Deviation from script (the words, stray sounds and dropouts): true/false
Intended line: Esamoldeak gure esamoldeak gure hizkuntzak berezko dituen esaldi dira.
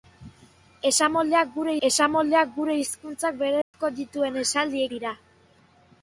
true